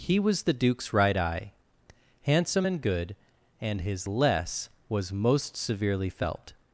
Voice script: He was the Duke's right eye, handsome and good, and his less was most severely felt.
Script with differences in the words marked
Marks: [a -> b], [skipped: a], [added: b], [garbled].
He was the Duke's right eye, handsome and good, and his less was most severely felt.